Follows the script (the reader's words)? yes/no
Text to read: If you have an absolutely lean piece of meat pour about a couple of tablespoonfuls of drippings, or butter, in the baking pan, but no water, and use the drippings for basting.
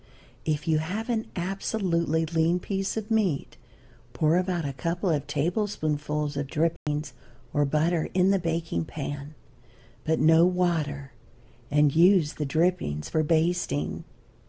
yes